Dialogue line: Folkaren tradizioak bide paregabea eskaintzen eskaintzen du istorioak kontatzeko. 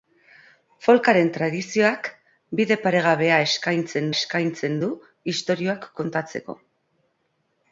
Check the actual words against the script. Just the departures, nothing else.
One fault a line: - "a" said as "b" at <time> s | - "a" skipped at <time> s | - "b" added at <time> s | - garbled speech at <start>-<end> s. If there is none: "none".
none